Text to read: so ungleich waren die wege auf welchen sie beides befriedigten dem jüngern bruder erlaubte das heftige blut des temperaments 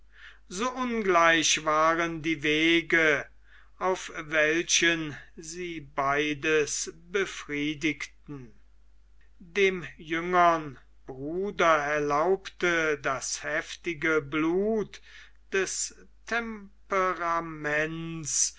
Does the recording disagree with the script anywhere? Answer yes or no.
no